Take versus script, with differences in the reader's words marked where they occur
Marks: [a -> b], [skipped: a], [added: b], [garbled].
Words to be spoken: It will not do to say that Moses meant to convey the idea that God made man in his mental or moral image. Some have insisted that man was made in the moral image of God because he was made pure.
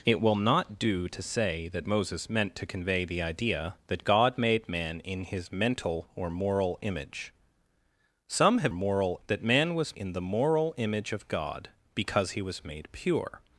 It will not do to say that Moses meant to convey the idea that God made man in his mental or moral image. Some have [insisted -> moral] that man was [skipped: made] in the moral image of God because he was made pure.